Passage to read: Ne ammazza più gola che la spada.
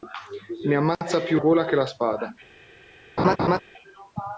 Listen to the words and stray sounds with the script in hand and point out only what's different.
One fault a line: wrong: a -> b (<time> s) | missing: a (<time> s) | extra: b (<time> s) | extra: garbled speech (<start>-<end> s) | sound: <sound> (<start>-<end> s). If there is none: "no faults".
sound: laugh (3.2-3.6 s)